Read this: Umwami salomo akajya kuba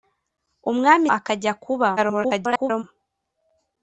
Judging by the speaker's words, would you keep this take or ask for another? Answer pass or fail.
fail